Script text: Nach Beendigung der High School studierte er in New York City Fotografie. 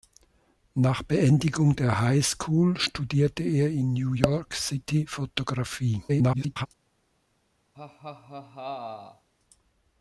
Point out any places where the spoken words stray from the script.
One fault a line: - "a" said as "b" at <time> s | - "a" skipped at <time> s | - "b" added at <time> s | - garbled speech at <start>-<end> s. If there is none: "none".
- garbled speech at 6.1-6.7 s